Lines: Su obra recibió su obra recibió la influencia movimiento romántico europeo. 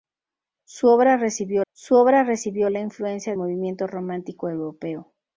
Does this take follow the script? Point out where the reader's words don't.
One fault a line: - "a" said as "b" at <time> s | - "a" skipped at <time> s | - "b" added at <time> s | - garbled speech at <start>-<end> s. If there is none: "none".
none